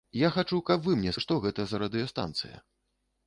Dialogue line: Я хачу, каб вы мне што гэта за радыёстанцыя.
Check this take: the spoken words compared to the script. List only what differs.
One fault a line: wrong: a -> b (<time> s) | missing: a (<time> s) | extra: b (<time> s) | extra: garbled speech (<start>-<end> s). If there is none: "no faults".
no faults